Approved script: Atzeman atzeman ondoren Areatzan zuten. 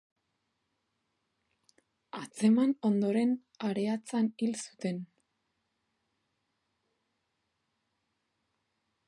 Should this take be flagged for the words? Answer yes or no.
yes